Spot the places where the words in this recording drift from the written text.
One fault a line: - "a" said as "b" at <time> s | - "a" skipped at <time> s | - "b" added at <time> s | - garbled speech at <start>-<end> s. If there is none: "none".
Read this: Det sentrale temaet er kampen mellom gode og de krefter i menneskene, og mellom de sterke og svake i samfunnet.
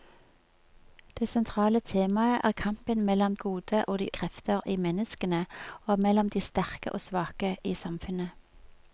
none